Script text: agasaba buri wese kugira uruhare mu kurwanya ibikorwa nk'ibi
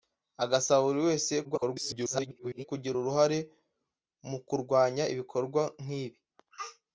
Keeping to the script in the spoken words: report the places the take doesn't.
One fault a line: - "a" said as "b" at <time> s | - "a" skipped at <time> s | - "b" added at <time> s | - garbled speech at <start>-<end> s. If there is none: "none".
- garbled speech at 1.4-2.7 s